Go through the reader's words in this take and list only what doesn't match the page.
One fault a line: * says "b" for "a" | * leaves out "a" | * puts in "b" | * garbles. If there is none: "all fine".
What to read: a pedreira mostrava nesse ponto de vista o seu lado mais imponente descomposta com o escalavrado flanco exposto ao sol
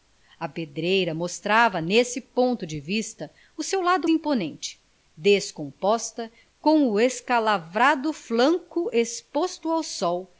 * leaves out "mais"